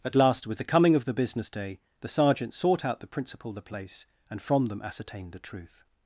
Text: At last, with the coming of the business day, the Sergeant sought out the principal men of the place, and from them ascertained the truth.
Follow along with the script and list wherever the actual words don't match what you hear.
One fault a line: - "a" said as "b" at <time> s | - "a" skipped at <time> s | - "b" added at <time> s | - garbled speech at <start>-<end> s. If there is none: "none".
- "men of" skipped at 3.5 s